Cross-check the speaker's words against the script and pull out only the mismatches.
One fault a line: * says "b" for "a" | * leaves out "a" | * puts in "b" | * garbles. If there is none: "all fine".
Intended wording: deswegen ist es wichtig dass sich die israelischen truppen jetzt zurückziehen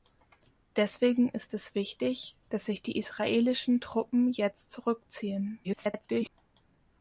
* garbles